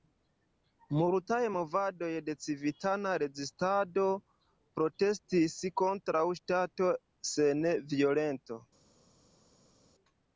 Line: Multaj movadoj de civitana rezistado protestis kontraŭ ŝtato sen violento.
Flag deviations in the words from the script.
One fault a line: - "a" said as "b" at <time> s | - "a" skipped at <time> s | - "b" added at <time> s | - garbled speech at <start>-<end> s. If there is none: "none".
none